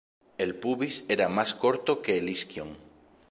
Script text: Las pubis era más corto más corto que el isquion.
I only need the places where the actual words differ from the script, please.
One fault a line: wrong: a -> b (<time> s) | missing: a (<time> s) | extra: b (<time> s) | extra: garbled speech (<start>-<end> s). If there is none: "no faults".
wrong: Las -> El (0.4 s)
missing: más corto (2.0 s)